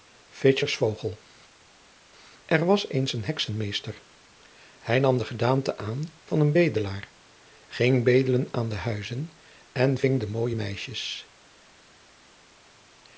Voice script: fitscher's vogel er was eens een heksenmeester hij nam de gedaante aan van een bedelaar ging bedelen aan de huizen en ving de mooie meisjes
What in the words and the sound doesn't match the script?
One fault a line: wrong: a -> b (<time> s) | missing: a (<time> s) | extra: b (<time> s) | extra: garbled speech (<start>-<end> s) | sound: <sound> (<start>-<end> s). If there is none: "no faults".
no faults